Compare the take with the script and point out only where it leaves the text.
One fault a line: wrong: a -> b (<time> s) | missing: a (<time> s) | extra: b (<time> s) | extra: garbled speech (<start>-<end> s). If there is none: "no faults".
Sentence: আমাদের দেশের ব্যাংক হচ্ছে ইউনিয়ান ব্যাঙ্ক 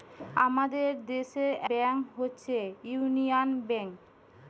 no faults